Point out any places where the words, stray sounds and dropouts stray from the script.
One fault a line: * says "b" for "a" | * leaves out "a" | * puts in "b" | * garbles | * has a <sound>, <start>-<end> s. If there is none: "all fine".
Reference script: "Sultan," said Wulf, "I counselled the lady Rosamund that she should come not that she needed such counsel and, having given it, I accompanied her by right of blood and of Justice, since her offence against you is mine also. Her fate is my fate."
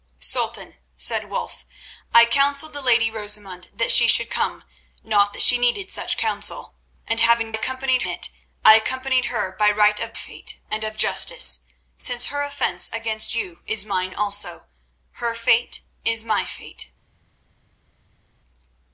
* says "accompanied" for "given"
* says "fate" for "blood"